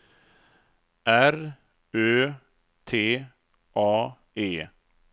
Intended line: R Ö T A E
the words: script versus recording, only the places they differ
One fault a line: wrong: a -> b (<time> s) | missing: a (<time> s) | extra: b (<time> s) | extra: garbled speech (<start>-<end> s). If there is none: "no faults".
no faults